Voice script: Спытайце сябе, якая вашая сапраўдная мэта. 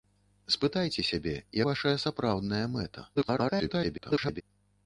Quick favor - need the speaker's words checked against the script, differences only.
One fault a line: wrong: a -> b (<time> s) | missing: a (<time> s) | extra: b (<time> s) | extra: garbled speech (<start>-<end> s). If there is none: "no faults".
missing: якая (1.3 s)
extra: garbled speech (3.1-4.4 s)